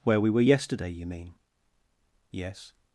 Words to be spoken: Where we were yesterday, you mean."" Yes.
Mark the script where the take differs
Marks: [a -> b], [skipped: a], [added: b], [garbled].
Where we were yesterday, you mean."" Yes.